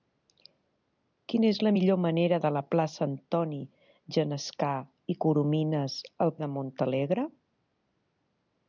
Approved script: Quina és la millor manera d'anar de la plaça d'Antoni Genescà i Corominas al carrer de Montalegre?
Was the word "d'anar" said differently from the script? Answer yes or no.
yes